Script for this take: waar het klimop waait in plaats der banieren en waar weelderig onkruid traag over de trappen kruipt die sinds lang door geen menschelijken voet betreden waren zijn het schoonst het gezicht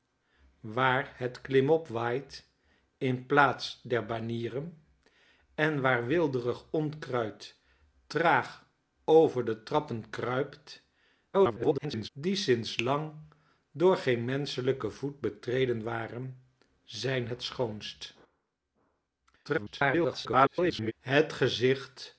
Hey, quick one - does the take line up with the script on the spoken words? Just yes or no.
no